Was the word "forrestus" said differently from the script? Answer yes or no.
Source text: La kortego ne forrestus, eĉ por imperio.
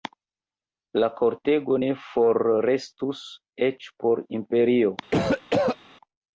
no